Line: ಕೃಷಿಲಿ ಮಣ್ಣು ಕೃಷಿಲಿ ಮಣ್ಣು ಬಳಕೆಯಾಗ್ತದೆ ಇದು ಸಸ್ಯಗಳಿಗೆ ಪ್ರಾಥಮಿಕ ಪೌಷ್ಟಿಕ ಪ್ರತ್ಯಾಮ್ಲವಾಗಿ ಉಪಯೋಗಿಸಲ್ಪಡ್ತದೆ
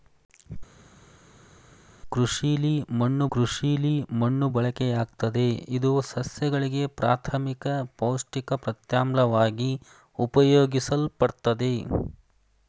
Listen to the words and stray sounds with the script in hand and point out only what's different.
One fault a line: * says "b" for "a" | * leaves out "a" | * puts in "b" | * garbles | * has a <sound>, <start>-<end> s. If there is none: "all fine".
all fine